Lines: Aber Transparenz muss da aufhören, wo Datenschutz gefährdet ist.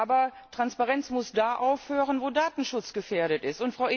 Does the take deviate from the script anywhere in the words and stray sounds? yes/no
no